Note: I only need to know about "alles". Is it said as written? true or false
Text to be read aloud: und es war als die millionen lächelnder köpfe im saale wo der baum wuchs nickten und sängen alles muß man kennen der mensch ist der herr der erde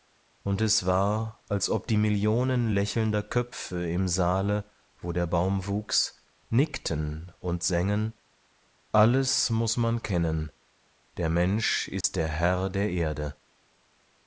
true